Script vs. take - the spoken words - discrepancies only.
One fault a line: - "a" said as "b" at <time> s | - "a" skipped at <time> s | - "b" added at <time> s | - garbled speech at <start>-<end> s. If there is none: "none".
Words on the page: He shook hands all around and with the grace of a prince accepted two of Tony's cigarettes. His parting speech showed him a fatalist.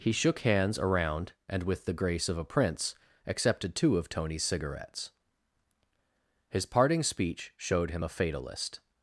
- "all" skipped at 0.8 s